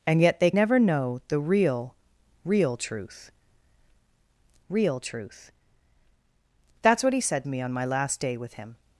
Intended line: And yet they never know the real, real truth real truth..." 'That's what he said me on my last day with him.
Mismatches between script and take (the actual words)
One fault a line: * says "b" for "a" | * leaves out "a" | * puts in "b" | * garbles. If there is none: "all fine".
all fine